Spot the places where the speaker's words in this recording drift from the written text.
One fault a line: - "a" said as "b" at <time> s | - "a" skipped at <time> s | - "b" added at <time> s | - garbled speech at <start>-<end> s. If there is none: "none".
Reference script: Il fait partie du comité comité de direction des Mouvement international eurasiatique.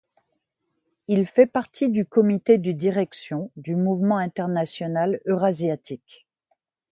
- "comité" skipped at 2.6 s
- "des" said as "du" at 3.6 s